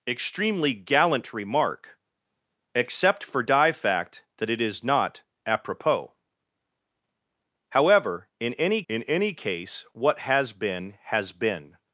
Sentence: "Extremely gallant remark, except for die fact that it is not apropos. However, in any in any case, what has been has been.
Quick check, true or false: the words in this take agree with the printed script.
true